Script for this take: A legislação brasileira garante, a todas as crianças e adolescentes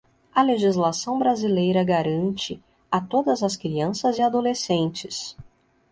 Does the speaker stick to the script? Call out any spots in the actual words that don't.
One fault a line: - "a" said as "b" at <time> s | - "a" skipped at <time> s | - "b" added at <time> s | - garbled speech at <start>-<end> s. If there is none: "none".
none